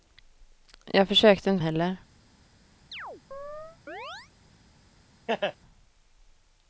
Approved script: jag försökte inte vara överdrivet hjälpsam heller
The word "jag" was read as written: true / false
true